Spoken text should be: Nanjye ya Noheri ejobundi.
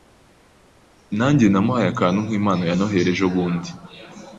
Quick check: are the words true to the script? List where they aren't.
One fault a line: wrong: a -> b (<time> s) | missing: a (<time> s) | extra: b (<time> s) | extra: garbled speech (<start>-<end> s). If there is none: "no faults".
extra: namuhaye akantu nkimpano (1.5 s)